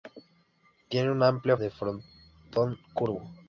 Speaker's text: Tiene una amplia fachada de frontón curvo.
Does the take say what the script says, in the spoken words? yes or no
no